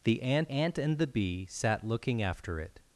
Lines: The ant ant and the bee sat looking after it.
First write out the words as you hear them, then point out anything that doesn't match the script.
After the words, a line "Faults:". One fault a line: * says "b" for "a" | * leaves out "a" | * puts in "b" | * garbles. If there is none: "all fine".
The ant ant and the bee sat looking after it.
Faults:
all fine